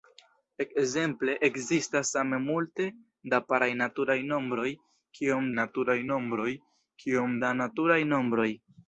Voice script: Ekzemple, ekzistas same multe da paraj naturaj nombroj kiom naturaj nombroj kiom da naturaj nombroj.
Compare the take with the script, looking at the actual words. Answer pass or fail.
pass